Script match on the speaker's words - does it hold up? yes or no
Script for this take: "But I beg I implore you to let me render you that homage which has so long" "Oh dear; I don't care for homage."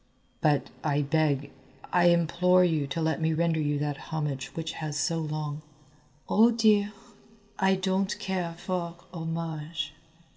yes